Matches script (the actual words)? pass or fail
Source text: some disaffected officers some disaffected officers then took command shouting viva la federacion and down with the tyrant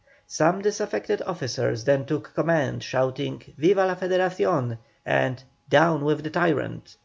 fail